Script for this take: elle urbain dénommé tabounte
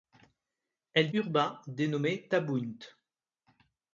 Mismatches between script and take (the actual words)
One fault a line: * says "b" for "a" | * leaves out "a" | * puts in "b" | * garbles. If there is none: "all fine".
all fine